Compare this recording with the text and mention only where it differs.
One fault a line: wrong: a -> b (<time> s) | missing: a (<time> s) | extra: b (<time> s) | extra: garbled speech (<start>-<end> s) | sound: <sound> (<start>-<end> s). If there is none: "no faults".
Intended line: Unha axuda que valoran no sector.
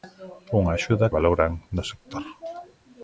missing: que (1.1 s)